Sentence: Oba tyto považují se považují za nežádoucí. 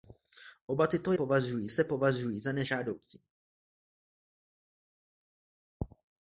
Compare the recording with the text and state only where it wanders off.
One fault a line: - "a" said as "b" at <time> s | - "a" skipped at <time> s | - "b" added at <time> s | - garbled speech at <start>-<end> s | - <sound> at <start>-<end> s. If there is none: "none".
none